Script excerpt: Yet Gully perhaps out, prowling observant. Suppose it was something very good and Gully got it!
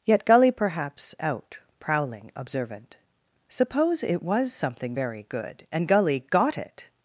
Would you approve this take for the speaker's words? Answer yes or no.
yes